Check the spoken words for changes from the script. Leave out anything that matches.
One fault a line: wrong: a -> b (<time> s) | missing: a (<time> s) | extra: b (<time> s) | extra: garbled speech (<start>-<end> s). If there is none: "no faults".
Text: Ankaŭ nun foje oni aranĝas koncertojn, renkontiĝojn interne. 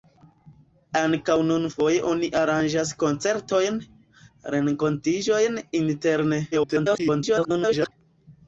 extra: garbled speech (6.5-7.9 s)